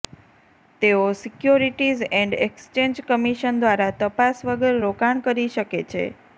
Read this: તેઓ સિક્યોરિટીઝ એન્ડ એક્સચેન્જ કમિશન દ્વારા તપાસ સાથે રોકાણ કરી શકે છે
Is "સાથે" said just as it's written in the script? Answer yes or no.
no